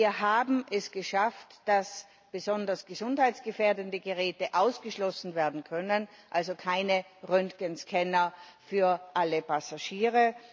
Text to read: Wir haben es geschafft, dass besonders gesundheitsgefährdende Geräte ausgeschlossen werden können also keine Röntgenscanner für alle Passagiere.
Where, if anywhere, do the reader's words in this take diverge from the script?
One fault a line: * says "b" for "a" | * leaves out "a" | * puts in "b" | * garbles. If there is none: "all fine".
all fine